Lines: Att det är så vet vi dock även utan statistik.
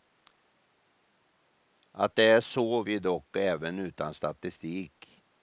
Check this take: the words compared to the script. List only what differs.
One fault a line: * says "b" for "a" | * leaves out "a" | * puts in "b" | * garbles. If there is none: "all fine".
* leaves out "vet"